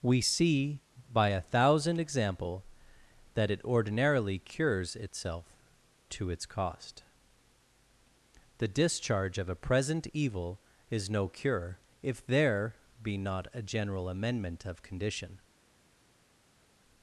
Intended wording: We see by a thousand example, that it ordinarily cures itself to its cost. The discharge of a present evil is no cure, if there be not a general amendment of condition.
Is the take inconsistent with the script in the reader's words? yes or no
no